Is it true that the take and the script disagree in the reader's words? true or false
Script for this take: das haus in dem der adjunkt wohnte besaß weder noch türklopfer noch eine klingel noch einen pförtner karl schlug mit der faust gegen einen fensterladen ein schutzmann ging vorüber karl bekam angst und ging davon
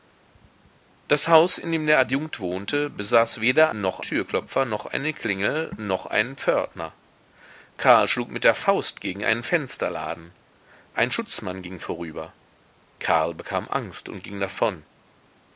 false